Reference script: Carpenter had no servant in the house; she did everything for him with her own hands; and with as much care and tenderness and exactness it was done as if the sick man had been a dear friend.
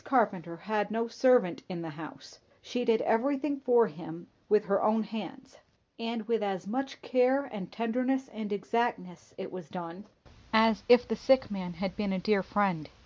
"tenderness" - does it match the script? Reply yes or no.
yes